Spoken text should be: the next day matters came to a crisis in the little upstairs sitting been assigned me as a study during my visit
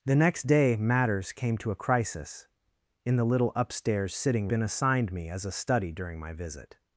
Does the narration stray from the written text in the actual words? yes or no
no